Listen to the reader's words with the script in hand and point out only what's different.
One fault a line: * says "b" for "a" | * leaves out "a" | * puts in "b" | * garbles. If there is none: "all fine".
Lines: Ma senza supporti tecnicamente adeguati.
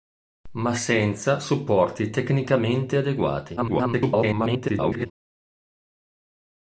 * garbles